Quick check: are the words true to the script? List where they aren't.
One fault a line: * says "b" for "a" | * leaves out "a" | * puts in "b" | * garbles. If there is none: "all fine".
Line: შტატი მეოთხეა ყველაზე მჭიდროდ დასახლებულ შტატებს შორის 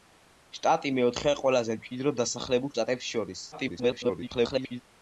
* garbles